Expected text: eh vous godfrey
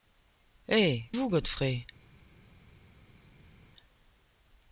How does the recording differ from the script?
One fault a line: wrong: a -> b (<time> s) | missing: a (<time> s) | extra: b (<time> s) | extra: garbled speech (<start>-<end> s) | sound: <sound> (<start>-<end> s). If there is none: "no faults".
no faults